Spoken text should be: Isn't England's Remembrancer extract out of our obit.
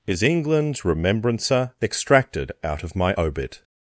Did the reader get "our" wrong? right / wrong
wrong